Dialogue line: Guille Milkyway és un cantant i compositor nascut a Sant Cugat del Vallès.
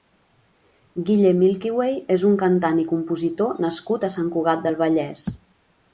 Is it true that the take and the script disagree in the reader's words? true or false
false